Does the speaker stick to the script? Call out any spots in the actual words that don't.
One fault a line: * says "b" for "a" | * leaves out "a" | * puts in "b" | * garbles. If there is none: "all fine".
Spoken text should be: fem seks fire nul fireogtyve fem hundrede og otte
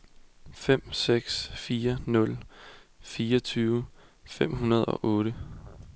all fine